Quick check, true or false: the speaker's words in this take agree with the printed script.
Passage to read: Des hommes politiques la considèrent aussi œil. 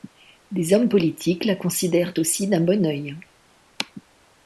false